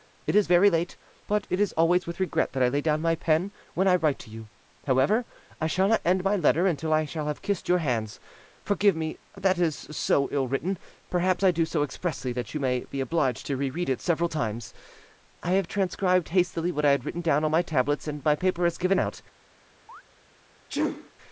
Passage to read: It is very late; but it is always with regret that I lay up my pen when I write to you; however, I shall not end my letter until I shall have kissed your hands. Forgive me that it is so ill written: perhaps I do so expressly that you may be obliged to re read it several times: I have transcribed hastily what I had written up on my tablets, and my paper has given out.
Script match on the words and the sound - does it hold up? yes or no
no